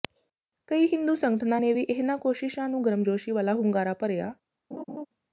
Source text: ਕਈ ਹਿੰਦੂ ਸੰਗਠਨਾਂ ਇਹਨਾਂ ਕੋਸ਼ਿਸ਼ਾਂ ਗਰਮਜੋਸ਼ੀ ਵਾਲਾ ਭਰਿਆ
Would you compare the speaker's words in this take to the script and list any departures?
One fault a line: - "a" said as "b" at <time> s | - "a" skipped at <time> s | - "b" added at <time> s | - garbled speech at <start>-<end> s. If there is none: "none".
- "ਨੇ ਵੀ" added at 1.6 s
- "ਨੂੰ" added at 2.7 s
- "ਹੁੰਗਾਰਾ" added at 3.5 s